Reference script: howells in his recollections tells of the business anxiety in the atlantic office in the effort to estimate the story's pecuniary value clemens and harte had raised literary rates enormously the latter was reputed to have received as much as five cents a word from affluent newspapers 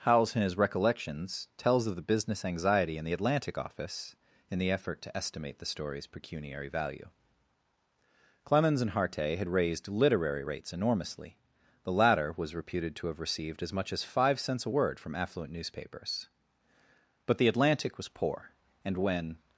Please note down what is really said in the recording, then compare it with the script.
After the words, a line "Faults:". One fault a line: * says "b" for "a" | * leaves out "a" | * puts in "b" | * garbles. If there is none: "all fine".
howells in his recollections tells of the business anxiety in the atlantic office in the effort to estimate the story's pecuniary value clemens and harte had raised literary rates enormously the latter was reputed to have received as much as five cents a word from affluent newspapers but the atlantic was poor and when
Faults:
* puts in "but the atlantic was poor and when"